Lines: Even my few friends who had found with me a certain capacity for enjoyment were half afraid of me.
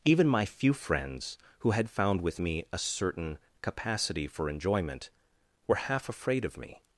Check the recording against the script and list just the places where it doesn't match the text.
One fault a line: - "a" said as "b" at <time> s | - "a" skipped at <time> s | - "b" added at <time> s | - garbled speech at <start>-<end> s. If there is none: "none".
none